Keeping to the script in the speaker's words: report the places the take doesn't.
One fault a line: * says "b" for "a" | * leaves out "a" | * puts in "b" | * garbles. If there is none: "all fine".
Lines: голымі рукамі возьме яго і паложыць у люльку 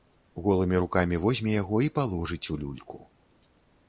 all fine